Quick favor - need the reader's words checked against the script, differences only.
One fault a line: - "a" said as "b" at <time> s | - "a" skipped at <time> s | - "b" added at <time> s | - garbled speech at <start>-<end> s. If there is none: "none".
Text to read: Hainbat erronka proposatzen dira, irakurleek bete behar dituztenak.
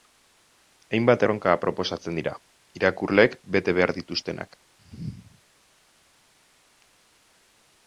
none